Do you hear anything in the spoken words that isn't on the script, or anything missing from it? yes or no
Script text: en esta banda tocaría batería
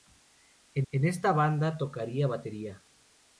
yes